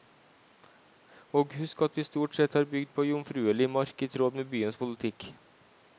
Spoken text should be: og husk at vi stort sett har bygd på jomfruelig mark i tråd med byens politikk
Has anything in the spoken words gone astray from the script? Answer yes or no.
no